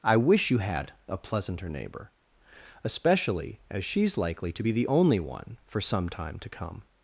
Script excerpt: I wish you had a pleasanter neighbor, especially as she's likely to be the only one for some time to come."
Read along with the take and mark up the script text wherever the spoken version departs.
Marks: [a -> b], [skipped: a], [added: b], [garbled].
I wish you had a pleasanter neighbor, especially as she's likely to be the only one for some time to come."